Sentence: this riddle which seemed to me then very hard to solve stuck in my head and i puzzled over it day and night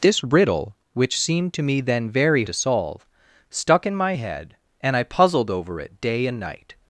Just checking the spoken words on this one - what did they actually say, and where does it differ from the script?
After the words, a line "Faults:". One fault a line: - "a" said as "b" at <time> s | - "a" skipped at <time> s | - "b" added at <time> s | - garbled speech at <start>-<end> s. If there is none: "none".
this riddle which seemed to me then very to solve stuck in my head and i puzzled over it day and night
Faults:
- "hard" skipped at 2.5 s